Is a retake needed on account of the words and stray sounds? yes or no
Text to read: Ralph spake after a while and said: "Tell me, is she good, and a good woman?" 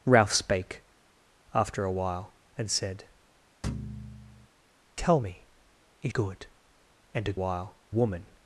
yes